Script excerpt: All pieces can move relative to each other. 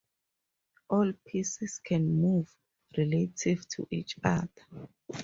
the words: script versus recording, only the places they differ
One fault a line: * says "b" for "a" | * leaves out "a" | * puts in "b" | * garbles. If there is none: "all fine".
all fine